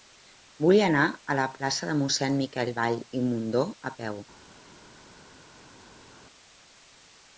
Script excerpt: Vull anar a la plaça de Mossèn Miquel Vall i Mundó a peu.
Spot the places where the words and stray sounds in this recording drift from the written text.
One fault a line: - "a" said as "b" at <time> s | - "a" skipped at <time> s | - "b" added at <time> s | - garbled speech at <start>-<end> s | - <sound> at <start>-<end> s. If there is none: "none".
none